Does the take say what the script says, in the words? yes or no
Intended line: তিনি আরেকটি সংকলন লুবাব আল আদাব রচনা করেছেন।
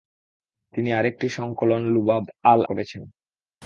no